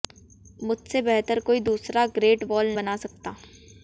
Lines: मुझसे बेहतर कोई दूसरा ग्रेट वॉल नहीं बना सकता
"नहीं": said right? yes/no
no